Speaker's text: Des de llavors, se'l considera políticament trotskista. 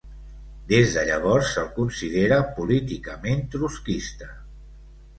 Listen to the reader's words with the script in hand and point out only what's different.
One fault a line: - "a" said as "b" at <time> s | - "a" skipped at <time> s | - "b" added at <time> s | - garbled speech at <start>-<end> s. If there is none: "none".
none